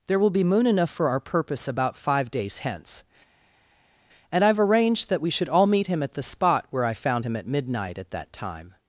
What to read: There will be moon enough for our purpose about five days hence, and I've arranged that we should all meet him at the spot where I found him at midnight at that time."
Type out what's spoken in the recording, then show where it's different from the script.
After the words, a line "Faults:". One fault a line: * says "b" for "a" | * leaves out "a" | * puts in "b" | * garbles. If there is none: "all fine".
There will be moon enough for our purpose about five days hence, and I've arranged that we should all meet him at the spot where I found him at midnight at that time."
Faults:
all fine